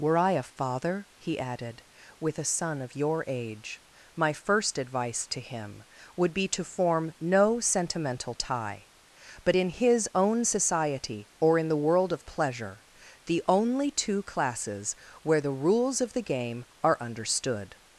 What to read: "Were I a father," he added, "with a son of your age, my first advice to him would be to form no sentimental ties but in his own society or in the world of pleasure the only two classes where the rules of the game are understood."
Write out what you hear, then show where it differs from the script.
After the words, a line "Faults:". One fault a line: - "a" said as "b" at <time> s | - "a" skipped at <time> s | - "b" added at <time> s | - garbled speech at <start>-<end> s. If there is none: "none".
"Were I a father," he added, "with a son of your age, my first advice to him would be to form no sentimental tie but in his own society or in the world of pleasure the only two classes where the rules of the game are understood."
Faults:
- "ties" said as "tie" at 8.3 s